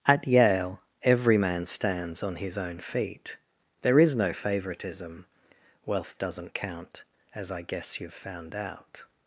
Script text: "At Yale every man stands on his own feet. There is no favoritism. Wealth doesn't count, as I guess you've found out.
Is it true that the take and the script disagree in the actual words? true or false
false